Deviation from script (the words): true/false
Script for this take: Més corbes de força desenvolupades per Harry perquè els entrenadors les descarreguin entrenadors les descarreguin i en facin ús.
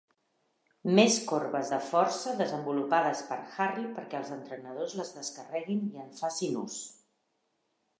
true